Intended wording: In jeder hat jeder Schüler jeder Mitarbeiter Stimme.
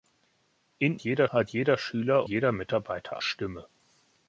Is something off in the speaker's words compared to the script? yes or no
no